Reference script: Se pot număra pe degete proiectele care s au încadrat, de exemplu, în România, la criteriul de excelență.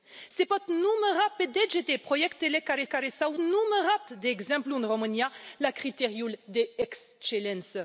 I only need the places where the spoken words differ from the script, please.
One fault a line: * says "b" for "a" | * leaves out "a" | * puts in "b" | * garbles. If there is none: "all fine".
* puts in "care"
* says "număra" for "încadrat"